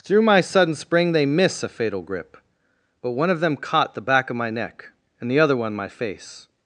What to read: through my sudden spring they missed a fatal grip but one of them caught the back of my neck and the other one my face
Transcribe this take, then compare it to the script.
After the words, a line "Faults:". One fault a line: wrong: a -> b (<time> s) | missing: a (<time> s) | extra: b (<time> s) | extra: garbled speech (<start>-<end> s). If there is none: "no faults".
through my sudden spring they miss a fatal grip but one of them caught the back of my neck and the other one my face
Faults:
wrong: missed -> miss (1.2 s)